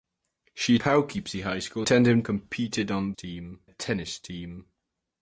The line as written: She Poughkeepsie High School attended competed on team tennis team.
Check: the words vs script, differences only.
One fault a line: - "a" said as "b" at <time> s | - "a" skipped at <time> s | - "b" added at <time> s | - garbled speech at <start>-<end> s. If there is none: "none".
none